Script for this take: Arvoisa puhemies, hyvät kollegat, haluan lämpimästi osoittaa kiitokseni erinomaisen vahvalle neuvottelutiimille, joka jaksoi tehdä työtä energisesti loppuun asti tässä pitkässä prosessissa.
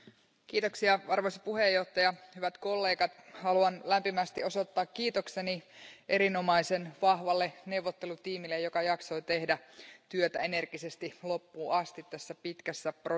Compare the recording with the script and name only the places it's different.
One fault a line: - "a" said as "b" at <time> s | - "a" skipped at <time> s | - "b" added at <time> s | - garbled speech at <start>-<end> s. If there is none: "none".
none